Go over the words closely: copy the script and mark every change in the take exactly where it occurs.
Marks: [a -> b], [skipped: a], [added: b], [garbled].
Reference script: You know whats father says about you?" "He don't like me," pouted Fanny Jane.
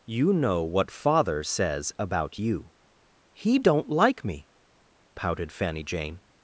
You know [whats -> what] father says about you?" "He don't like me," pouted Fanny Jane.